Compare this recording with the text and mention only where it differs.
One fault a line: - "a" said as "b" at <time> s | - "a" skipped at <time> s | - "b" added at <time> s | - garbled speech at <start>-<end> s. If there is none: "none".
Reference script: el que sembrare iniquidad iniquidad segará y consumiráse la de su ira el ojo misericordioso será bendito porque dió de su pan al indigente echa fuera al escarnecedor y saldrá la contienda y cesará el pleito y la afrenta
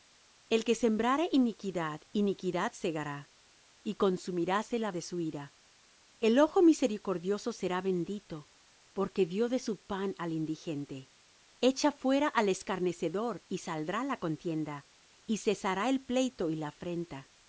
none